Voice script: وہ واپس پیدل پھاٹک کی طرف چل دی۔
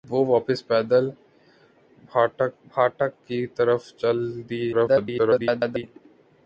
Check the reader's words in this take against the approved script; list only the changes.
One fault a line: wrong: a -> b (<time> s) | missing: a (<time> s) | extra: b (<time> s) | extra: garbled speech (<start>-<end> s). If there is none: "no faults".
extra: پھاٹک (2.7 s)
extra: garbled speech (4.7-5.8 s)